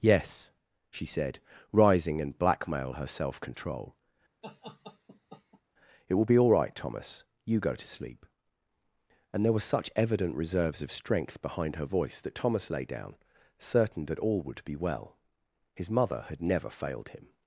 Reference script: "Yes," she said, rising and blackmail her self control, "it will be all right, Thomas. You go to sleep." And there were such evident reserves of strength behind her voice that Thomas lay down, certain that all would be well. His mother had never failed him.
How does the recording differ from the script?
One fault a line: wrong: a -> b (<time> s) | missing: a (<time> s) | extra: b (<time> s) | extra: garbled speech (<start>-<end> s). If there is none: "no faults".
no faults